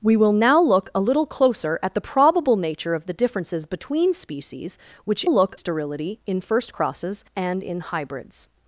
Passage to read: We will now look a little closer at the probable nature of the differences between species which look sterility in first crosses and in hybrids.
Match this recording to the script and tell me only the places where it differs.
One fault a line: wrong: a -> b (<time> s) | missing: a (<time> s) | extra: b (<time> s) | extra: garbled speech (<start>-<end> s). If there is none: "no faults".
no faults